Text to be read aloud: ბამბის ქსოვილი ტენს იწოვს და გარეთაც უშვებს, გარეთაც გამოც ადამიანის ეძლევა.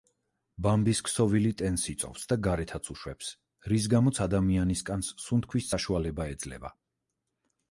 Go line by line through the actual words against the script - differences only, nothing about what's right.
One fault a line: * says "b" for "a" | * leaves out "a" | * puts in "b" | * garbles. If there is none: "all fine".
* says "რის" for "გარეთაც"
* puts in "კანს სუნთქვის საშუალება"